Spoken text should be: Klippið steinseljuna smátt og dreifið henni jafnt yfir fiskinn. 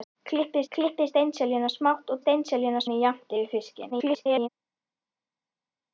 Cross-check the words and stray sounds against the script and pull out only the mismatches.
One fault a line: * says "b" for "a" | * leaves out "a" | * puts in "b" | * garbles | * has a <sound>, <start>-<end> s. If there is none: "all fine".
* puts in "klippið"
* says "steinseljuna" for "dreifið"
* garbles